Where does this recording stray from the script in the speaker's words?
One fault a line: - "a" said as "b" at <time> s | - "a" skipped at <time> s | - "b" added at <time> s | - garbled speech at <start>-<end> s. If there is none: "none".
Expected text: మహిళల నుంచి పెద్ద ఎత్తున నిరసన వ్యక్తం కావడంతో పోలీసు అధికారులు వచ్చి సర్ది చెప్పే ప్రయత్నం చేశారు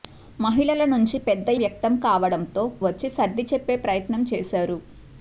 - "ఎత్తున నిరసన" skipped at 1.5 s
- "పోలీసు అధికారులు" skipped at 2.5 s